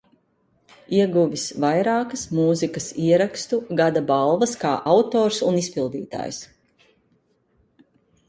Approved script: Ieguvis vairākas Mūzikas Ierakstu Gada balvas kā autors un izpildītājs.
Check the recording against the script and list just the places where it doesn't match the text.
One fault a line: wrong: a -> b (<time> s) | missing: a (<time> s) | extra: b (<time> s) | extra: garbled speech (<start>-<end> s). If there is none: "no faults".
no faults